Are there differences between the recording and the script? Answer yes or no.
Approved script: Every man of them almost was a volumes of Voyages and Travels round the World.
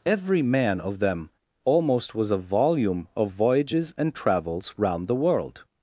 yes